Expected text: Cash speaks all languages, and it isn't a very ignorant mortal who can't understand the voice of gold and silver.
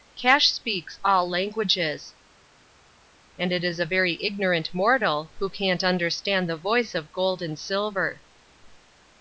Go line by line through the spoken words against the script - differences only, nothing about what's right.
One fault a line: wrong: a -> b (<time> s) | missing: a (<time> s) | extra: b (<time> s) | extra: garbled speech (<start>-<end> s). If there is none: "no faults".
wrong: isn't -> is (3.6 s)